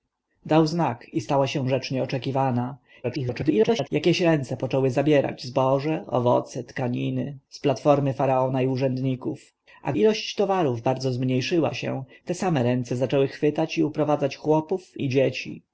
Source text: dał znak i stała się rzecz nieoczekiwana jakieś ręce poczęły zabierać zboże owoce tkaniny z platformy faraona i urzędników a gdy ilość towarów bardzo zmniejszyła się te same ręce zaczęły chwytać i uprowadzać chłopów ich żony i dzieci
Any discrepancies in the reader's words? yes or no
yes